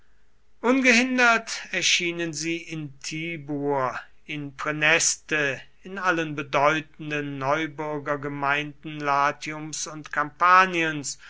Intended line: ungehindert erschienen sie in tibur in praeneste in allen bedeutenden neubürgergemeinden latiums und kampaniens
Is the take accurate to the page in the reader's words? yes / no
yes